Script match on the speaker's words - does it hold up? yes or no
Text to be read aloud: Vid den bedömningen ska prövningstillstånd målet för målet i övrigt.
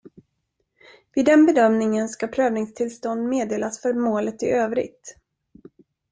no